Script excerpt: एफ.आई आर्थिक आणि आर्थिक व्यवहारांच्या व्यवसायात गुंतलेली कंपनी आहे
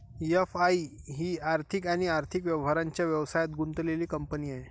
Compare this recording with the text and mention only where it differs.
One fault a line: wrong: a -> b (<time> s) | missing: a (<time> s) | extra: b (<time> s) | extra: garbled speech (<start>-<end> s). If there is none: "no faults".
extra: ही (1.1 s)